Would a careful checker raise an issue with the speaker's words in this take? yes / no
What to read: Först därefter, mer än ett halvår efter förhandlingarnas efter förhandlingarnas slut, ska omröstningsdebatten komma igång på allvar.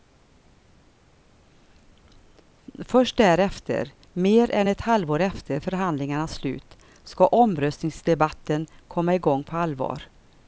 yes